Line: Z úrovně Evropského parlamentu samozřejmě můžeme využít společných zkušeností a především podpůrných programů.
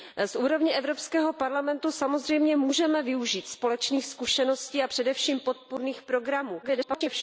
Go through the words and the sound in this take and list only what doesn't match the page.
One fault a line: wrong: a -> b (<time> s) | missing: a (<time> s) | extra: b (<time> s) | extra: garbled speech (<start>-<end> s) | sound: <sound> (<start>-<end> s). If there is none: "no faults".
extra: garbled speech (6.6-7.2 s)